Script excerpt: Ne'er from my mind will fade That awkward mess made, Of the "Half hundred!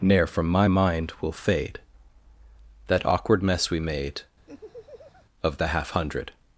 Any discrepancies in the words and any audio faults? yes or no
yes